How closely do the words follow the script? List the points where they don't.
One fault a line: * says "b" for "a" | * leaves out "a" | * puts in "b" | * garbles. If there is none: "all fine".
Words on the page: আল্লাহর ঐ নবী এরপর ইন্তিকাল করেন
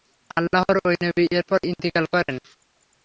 all fine